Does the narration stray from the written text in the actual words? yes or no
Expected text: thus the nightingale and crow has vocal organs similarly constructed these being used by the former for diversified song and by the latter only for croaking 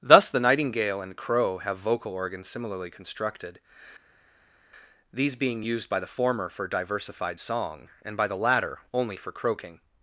yes